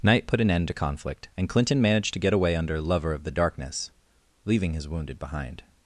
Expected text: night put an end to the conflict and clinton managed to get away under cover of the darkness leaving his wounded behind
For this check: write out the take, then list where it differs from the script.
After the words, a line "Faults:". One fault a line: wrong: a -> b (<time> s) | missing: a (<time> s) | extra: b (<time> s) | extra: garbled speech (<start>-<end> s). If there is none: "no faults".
night put an end to conflict and clinton managed to get away under lover of the darkness leaving his wounded behind
Faults:
missing: the (0.7 s)
wrong: cover -> lover (2.8 s)